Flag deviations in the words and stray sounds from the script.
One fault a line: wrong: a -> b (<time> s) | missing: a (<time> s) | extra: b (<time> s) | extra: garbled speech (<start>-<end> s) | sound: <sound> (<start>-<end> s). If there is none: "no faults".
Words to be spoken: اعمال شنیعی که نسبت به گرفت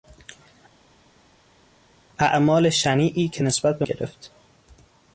no faults